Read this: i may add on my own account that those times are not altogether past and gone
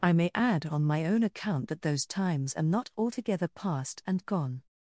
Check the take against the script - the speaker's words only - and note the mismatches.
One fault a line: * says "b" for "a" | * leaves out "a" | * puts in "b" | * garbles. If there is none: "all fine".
all fine